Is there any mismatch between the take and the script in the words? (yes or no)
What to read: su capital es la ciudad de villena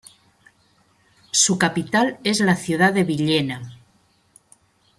no